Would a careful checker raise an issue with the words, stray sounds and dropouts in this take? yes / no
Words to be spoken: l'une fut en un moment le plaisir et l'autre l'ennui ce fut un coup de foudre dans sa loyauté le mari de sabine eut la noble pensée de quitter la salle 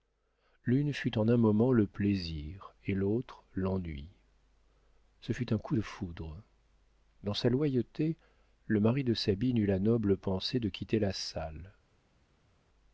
no